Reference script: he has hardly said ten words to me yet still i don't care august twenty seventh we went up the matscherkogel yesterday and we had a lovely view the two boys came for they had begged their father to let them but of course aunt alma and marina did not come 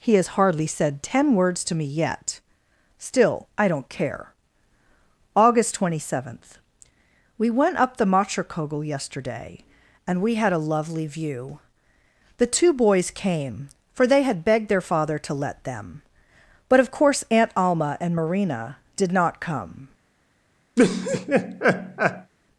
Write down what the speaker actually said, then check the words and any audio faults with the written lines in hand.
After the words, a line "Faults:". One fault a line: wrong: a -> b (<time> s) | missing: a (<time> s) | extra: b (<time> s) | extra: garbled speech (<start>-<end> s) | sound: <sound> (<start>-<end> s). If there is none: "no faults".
he has hardly said ten words to me yet still i don't care august twenty seventh we went up the matscherkogel yesterday and we had a lovely view the two boys came for they had begged their father to let them but of course aunt alma and marina did not come
Faults:
sound: laugh (20.8-22.3 s)